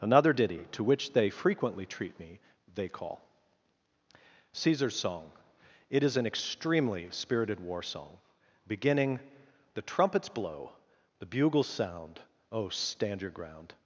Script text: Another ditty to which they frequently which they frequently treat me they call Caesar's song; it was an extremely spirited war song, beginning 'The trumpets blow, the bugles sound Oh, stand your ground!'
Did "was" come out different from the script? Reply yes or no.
yes